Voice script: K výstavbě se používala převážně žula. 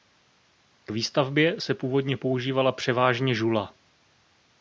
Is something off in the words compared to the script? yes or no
yes